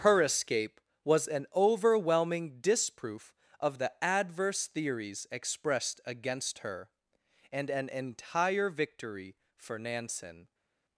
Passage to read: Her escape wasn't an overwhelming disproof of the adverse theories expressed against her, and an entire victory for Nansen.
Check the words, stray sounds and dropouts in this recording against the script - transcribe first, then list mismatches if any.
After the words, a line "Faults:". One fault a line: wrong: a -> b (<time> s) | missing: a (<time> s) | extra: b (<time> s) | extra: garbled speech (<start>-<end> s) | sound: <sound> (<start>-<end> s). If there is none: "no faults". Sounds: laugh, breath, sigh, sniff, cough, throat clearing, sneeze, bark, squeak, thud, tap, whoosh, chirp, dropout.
Her escape was an overwhelming disproof of the adverse theories expressed against her, and an entire victory for Nansen.
Faults:
wrong: wasn't -> was (1.0 s)